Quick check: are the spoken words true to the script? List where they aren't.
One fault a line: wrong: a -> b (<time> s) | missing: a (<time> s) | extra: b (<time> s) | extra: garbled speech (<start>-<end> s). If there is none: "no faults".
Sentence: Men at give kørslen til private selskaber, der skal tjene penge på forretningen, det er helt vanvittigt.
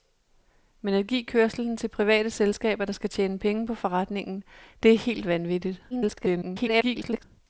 extra: garbled speech (5.9-7.2 s)